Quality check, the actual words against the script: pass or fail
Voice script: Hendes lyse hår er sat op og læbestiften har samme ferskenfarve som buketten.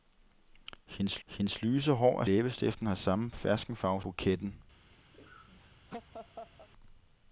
fail